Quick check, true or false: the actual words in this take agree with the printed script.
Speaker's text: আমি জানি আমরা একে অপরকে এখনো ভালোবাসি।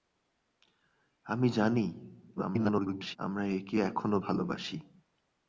false